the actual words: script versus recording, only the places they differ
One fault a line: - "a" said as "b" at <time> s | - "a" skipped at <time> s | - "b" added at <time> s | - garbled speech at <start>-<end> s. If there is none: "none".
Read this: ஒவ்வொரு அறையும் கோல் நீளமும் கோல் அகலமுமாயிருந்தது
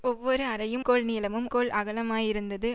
none